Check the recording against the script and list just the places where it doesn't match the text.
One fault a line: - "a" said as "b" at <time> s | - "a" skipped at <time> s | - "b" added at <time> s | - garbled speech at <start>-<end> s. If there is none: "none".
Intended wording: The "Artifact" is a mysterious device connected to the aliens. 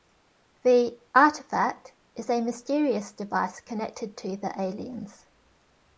none